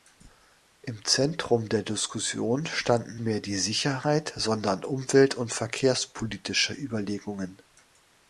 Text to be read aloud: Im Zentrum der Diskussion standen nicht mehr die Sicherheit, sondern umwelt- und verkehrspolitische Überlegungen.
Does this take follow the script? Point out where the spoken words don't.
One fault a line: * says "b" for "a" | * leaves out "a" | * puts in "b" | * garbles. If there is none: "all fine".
* leaves out "nicht"